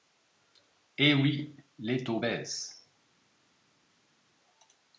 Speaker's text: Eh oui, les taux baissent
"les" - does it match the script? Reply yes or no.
yes